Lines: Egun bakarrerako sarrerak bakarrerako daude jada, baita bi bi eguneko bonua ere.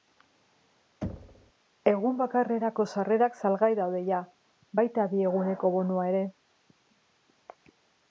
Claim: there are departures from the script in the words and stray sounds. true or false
true